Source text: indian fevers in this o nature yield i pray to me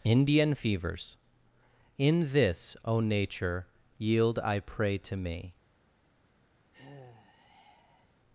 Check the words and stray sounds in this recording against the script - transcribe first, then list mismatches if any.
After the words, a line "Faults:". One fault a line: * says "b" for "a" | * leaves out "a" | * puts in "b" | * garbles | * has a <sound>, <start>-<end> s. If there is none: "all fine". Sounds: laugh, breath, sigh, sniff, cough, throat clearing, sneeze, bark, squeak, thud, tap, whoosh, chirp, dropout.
indian fevers in this o nature yield i pray to me
Faults:
* has a sigh, 6.7-8.2 s